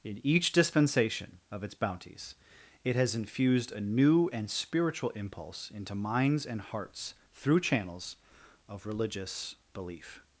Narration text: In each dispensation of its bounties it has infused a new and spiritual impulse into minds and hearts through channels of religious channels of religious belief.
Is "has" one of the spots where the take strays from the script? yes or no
no